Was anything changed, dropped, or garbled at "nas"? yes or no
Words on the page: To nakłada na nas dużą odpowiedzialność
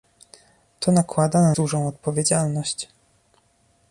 yes